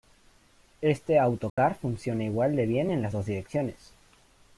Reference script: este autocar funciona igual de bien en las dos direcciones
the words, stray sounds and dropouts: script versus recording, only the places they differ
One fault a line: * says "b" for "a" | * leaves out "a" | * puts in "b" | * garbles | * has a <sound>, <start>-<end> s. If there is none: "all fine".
* has a dropout, 1.5-1.6 s